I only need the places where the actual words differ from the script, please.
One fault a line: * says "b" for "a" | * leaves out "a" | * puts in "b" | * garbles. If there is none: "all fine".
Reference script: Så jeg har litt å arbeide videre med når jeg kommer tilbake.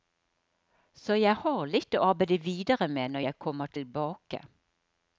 all fine